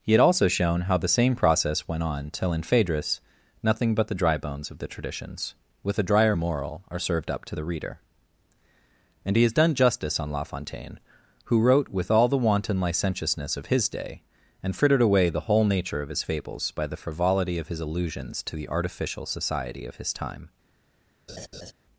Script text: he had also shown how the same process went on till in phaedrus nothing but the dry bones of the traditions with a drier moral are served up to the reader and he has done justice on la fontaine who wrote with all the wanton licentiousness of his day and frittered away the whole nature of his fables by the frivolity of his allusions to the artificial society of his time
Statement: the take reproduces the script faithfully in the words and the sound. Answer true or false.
false